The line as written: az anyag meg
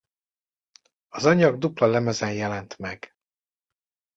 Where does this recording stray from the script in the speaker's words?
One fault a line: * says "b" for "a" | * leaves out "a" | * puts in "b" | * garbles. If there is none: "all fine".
* puts in "dupla lemezen jelent"